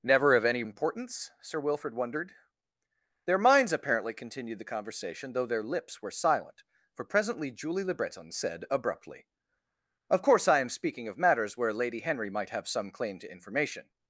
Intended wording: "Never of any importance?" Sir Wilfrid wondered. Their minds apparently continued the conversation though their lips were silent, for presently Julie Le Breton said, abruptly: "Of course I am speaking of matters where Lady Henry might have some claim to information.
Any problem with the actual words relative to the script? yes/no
no